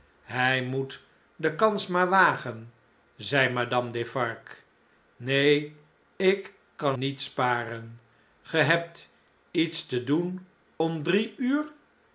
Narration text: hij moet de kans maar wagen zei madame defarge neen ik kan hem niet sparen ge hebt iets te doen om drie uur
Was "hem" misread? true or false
true